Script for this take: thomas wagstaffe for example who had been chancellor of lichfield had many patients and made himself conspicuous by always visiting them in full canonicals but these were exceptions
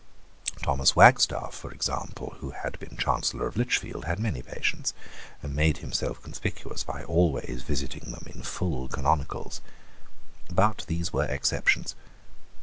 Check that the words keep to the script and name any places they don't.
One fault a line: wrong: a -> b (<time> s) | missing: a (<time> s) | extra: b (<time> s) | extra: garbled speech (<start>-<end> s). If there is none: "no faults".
no faults